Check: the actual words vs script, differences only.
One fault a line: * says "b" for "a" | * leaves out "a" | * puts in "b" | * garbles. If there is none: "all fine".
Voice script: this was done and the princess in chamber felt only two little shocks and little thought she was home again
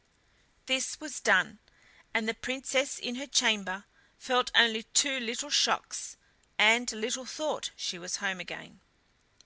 * puts in "her"